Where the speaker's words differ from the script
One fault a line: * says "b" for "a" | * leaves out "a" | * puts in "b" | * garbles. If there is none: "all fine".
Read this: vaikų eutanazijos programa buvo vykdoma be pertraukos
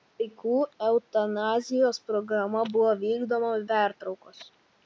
* leaves out "be"